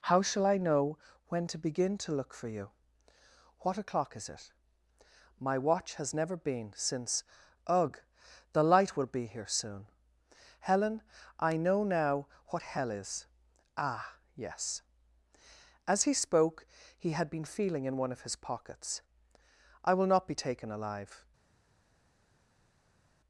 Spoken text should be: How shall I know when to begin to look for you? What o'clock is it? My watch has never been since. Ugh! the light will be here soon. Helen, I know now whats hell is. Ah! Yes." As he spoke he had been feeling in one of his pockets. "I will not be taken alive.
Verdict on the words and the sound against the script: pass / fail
fail